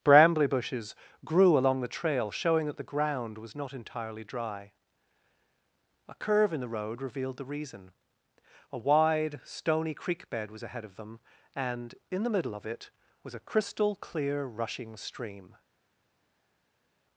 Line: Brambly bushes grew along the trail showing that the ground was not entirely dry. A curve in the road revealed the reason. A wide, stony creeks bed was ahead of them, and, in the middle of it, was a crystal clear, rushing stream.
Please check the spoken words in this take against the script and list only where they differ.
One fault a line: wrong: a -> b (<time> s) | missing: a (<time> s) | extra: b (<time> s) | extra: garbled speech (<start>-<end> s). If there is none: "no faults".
wrong: creeks -> creek (9.9 s)